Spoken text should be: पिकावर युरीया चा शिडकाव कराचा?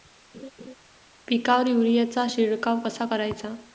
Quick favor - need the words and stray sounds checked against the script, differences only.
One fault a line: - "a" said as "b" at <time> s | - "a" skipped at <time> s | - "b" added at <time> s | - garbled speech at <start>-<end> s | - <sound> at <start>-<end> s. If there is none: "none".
- laugh at 0.3-0.7 s
- "कसा" added at 2.8 s